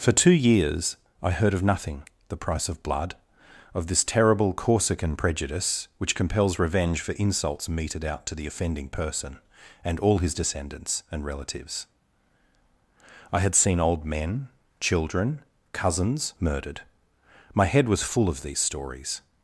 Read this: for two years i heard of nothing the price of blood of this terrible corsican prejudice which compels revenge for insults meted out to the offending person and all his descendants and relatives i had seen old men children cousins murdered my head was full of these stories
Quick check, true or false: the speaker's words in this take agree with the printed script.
true